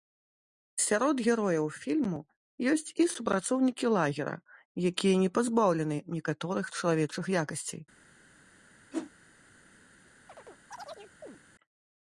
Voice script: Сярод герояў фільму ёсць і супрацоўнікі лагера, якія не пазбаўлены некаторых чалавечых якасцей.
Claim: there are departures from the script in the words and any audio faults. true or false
true